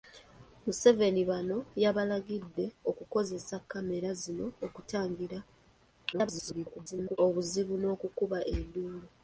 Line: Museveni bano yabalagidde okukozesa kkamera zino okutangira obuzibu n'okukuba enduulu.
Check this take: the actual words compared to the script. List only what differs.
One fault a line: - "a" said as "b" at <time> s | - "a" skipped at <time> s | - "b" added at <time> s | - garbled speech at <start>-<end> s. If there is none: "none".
- garbled speech at 6.1-7.2 s